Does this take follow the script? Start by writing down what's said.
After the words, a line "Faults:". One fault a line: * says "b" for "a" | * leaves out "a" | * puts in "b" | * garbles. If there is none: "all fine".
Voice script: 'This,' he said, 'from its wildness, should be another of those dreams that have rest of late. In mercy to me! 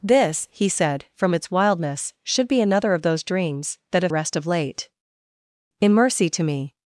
'This,' he said, 'from its wildness, should be another of those dreams that have rest of late. In mercy to me!
Faults:
all fine